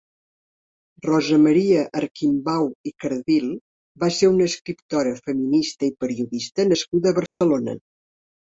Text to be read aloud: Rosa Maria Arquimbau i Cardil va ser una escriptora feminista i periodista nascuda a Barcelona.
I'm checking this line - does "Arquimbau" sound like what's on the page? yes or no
yes